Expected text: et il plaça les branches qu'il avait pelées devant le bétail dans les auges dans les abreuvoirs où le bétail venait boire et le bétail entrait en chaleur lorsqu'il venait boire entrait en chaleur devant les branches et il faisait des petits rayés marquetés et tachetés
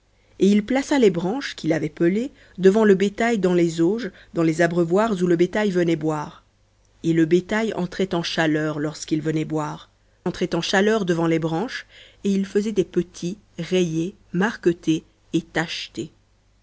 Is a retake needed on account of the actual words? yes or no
no